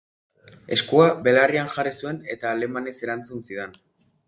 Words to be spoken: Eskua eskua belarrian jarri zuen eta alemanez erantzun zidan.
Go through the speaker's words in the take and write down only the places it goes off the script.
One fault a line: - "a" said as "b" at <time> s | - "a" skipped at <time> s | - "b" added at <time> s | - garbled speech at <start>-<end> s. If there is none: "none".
- "eskua" skipped at 1.1 s